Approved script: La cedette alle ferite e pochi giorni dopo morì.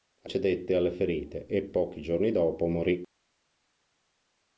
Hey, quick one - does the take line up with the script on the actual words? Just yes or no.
yes